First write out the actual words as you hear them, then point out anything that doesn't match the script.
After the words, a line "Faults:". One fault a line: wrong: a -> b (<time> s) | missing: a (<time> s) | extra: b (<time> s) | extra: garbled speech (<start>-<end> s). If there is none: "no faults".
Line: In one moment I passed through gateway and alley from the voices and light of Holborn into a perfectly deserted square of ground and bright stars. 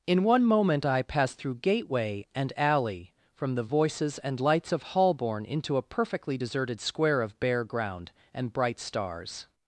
In one moment I passed through gateway and alley from the voices and lights of Holborn into a perfectly deserted square of bare ground and bright stars.
Faults:
wrong: light -> lights (4.4 s)
extra: bare (7.4 s)